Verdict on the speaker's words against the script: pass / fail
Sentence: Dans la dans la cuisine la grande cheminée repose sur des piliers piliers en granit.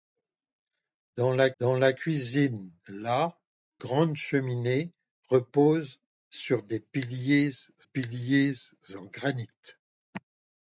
pass